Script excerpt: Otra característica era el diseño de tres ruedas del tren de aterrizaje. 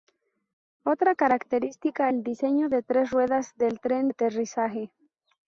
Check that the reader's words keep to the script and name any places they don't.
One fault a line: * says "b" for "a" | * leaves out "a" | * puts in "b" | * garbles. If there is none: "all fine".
* leaves out "era"
* leaves out "de"